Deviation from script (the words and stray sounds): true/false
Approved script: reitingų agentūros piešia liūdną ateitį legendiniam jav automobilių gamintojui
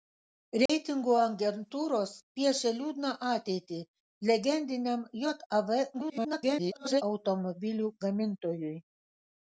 true